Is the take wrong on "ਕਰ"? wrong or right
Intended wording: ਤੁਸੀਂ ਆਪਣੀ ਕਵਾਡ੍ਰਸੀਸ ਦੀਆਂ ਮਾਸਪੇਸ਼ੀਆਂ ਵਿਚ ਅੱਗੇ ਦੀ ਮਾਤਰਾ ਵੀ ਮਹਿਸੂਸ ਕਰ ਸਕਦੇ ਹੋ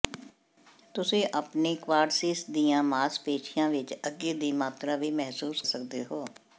wrong